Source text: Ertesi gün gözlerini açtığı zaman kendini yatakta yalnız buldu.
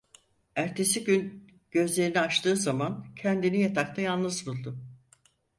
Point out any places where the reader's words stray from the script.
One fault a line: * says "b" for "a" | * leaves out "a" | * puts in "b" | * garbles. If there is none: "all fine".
all fine